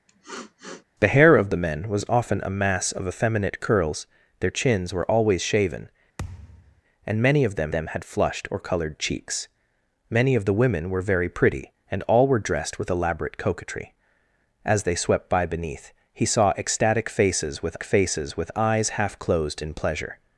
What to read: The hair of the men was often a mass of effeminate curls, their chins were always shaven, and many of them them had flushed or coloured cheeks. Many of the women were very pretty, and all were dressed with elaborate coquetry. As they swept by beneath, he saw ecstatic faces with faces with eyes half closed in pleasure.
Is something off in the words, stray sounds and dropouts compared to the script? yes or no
yes